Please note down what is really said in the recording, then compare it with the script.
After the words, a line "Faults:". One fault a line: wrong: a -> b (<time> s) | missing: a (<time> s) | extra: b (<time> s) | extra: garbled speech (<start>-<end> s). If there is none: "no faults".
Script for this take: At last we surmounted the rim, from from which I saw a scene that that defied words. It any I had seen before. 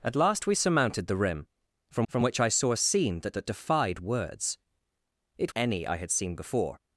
At last we surmounted the rim, from from which I saw a scene that that defied words. It any I had seen before.
Faults:
no faults